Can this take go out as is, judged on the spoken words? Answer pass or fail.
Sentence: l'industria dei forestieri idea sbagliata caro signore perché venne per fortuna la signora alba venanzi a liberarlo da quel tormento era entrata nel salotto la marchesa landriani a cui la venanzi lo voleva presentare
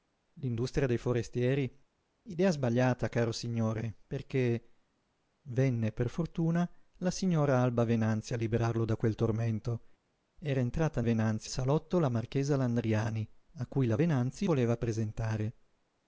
fail